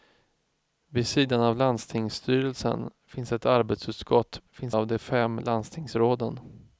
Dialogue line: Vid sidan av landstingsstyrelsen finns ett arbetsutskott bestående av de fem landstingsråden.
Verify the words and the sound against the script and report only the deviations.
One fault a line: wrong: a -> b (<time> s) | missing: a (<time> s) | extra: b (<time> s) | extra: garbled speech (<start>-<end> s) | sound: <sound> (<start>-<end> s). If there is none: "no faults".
wrong: bestående -> finns (4.5 s)